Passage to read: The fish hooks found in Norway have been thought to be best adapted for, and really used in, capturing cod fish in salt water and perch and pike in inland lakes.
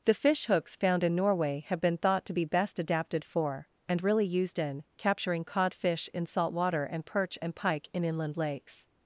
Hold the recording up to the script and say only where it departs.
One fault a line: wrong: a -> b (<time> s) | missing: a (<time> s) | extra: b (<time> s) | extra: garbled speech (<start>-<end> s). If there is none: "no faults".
no faults